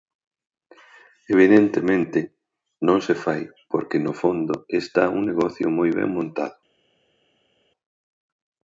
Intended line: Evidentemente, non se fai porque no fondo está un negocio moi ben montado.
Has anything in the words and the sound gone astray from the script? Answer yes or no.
no